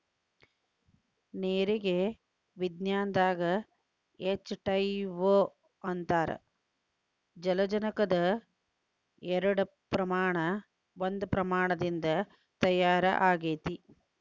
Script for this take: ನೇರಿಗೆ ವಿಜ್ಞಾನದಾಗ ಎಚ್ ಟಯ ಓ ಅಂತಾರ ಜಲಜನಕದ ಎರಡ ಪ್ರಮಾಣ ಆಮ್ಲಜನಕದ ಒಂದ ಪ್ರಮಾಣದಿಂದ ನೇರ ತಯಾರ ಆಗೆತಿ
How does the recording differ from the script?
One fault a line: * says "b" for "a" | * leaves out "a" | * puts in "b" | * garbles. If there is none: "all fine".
* leaves out "ಆಮ್ಲಜನಕದ"
* leaves out "ನೇರ"